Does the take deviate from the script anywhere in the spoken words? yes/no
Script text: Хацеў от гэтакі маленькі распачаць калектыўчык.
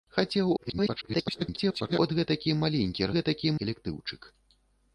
yes